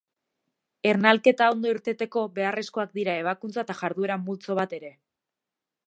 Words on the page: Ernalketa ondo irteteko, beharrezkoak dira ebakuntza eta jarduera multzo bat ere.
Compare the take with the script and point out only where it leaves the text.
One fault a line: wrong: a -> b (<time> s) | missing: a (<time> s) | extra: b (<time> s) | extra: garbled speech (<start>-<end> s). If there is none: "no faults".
no faults